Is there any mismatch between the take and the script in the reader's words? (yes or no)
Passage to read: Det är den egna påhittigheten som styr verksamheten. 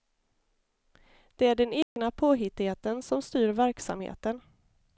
no